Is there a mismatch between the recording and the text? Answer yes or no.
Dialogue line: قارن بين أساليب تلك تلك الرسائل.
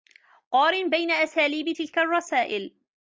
yes